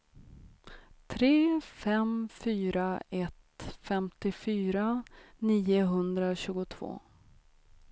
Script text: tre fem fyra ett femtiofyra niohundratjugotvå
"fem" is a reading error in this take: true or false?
false